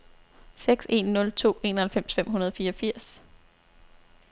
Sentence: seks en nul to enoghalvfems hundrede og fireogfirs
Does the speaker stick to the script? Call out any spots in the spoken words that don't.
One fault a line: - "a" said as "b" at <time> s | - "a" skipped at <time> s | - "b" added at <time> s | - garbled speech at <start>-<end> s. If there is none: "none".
- "fem" added at 2.1 s